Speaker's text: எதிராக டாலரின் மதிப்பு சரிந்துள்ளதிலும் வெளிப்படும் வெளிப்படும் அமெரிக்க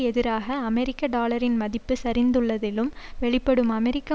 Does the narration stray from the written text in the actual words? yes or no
yes